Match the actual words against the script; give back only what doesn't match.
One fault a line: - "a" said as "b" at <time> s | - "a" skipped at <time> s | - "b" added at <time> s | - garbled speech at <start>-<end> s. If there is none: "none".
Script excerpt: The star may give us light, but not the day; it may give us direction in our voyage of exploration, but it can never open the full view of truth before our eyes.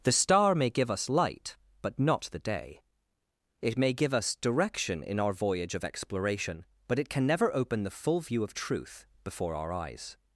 none